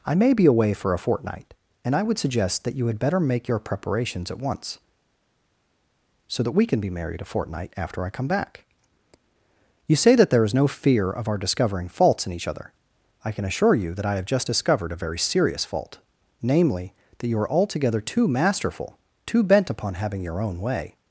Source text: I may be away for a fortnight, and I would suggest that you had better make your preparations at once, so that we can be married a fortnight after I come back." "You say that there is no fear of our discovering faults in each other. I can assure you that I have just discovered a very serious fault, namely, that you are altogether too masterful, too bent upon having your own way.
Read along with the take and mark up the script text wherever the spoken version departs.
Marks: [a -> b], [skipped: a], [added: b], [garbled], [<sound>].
I may be away for a fortnight, and I would suggest that you had better make your preparations at once, so that we can be married a fortnight after I come back." "You say that there is no fear of our discovering faults in each other. I can assure you that I have just discovered a very serious fault, namely, that you are altogether too masterful, too bent upon having your own way.